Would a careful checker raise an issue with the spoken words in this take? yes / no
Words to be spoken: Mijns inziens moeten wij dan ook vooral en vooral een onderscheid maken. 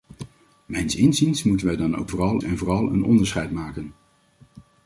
no